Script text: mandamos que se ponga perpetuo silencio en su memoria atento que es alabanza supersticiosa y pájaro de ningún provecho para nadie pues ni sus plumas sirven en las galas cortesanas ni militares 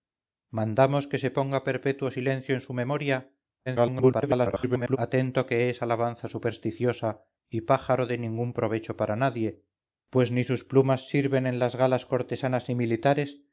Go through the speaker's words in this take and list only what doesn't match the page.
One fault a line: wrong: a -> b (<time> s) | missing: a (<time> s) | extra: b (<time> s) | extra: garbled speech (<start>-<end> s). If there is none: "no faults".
extra: garbled speech (3.7-5.0 s)